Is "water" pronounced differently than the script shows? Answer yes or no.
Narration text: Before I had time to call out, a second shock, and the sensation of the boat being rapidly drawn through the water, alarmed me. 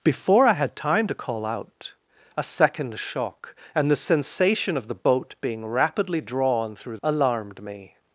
yes